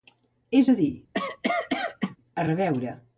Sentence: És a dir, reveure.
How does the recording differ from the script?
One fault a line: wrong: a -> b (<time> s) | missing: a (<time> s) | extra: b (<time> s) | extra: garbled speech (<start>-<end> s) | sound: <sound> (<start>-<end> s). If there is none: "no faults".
sound: cough (1.1-2.2 s)
extra: a (2.3 s)